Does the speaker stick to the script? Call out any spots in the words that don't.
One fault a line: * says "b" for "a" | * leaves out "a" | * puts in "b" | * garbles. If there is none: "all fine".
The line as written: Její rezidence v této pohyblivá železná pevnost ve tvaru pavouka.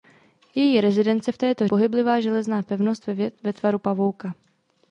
all fine